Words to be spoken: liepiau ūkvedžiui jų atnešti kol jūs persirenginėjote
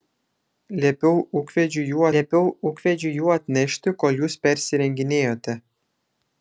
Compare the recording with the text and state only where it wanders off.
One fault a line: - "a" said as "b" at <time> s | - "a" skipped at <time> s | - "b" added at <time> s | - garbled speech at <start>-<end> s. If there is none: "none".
- "liepiau ūkvedžiui jų" added at 2.2 s